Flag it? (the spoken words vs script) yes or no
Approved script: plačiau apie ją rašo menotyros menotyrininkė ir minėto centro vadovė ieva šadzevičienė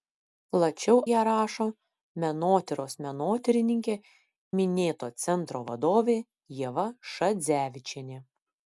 yes